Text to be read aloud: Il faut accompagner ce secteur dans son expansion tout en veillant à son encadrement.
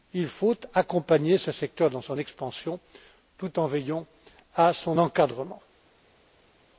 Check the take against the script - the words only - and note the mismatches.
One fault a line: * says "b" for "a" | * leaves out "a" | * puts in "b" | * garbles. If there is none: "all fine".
all fine